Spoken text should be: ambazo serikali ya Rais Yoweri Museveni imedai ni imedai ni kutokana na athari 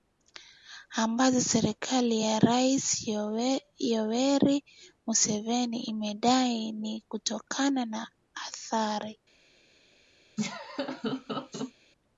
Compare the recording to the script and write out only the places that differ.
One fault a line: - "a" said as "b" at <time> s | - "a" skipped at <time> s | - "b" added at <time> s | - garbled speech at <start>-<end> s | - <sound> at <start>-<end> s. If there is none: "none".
- "imedai ni" skipped at 7.0 s
- laugh at 10.4-11.7 s